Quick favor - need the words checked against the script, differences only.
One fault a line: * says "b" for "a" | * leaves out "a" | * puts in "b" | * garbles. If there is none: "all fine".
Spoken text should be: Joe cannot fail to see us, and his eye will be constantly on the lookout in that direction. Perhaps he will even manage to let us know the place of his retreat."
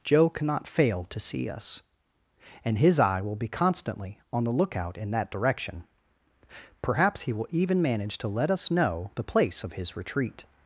all fine